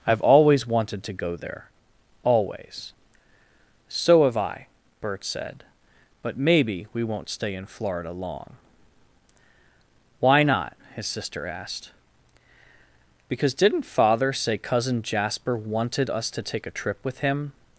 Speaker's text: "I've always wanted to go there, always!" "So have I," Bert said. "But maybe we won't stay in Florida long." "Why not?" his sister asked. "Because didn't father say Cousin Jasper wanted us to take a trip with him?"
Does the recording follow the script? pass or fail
pass